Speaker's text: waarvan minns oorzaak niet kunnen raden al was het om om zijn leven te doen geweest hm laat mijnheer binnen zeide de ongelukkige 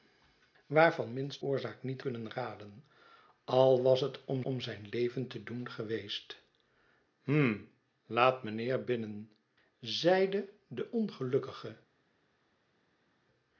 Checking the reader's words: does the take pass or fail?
pass